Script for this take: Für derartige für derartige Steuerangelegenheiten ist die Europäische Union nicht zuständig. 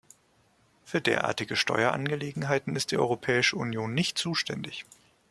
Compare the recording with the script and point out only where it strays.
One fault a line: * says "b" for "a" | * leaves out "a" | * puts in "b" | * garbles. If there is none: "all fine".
* leaves out "für derartige"